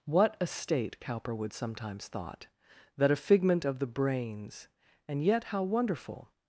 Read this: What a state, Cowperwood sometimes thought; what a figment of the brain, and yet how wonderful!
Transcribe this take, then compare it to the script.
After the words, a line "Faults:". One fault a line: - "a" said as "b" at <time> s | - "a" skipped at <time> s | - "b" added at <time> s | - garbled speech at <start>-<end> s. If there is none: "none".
What a state, Cowperwood sometimes thought; that a figment of the brains, and yet how wonderful!
Faults:
- "what" said as "that" at 3.0 s
- "brain" said as "brains" at 3.9 s